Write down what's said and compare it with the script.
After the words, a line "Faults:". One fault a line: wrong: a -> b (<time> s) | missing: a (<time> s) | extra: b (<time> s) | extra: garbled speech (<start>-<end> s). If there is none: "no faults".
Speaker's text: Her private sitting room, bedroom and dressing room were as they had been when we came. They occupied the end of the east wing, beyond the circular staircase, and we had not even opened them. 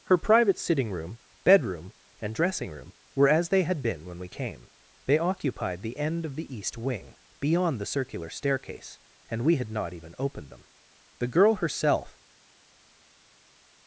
Her private sitting room, bedroom and dressing room were as they had been when we came. They occupied the end of the east wing, beyond the circular staircase, and we had not even opened them. The girl herself
Faults:
extra: The girl herself (11.2 s)